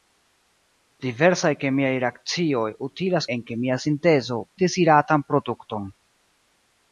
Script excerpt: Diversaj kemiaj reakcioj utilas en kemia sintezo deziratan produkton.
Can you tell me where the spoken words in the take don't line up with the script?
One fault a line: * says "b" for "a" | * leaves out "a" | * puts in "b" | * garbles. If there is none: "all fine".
all fine